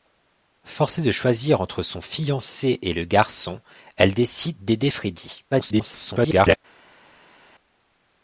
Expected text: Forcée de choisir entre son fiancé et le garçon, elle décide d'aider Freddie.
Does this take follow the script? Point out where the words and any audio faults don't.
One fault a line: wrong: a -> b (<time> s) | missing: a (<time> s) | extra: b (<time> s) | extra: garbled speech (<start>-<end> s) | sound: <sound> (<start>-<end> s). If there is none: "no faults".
extra: garbled speech (5.5-6.6 s)